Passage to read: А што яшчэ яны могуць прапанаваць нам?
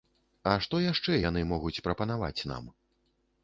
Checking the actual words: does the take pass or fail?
pass